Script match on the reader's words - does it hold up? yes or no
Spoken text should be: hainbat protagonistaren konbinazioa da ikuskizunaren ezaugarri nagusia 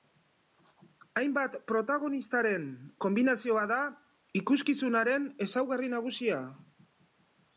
yes